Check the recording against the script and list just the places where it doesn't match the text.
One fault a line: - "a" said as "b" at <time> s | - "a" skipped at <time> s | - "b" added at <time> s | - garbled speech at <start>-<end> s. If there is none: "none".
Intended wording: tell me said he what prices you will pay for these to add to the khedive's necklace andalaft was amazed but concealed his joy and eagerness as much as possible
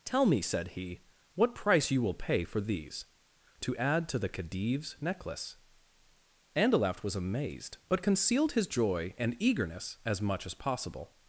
- "prices" said as "price" at 1.6 s